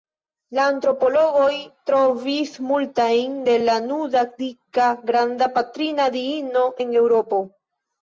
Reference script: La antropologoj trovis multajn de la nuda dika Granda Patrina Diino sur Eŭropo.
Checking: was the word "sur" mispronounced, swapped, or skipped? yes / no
yes